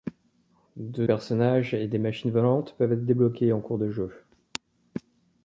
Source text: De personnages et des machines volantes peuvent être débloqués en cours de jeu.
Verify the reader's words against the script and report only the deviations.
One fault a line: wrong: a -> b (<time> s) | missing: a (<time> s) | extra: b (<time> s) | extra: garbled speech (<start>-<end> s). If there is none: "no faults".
no faults